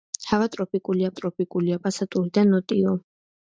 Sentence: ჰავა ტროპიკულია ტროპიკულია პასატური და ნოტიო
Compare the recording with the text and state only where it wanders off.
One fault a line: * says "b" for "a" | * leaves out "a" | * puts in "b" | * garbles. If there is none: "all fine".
all fine